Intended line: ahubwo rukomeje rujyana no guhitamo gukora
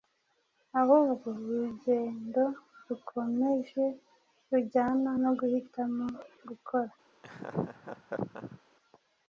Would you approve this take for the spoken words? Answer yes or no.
no